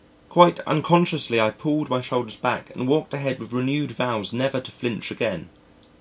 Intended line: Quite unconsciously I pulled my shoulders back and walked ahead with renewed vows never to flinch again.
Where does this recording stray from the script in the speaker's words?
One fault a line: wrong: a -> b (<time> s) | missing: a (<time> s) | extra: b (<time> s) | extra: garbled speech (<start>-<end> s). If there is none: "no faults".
no faults